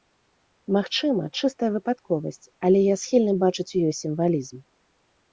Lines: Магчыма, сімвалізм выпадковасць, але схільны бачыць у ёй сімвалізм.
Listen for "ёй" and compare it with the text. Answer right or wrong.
right